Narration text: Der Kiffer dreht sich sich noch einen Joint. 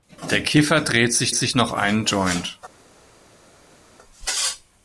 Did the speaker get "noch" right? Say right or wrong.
right